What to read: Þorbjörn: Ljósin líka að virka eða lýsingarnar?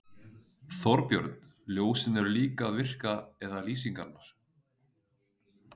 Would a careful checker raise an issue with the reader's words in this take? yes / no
yes